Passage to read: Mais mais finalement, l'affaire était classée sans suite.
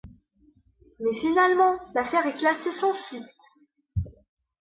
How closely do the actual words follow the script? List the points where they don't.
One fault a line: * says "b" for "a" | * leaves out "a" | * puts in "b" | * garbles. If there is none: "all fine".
* leaves out "mais"
* says "est" for "était"